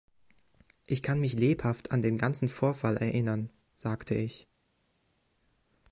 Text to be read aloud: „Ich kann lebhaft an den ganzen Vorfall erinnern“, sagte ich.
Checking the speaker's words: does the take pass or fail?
fail